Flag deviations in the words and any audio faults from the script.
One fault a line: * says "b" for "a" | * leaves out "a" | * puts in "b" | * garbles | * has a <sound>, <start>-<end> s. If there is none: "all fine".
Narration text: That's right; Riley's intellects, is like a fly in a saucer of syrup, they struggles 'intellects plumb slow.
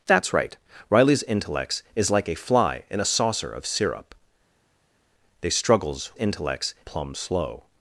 all fine